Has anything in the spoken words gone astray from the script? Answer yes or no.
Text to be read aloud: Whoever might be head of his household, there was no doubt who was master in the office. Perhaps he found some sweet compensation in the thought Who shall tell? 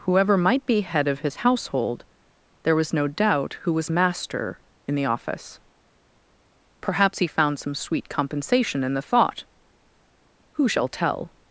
no